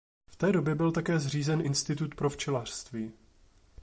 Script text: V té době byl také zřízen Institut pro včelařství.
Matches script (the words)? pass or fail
pass